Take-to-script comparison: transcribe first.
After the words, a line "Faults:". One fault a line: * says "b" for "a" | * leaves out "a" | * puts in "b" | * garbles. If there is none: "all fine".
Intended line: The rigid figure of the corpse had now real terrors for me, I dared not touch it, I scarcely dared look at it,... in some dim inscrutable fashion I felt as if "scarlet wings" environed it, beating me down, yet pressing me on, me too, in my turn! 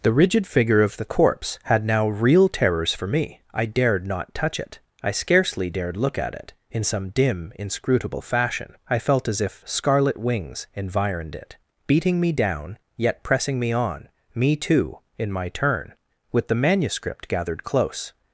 The rigid figure of the corpse had now real terrors for me, I dared not touch it, I scarcely dared look at it,... in some dim inscrutable fashion I felt as if "scarlet wings" environed it, beating me down, yet pressing me on, me too, in my turn! With the manuscript gathered close
Faults:
* puts in "With the manuscript gathered close"